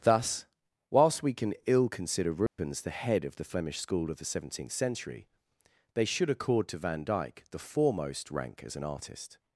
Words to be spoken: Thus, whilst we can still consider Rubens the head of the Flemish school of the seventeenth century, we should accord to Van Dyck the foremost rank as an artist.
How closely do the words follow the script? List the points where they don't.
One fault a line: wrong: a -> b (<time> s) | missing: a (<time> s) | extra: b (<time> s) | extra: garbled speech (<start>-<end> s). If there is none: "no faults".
wrong: still -> ill (1.7 s)
wrong: we -> they (5.9 s)